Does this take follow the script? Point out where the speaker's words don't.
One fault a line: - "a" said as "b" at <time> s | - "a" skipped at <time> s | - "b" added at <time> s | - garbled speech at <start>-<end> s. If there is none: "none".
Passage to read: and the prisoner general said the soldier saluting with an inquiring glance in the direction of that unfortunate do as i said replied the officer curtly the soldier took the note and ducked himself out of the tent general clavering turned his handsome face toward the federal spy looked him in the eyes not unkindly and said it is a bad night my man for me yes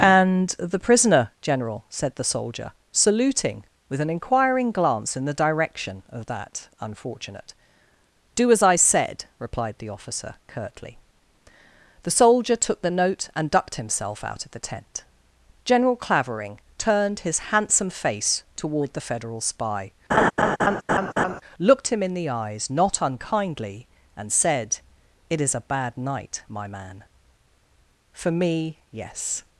none